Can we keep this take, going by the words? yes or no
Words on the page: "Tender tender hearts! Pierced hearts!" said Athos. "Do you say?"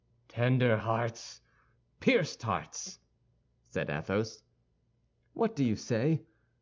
no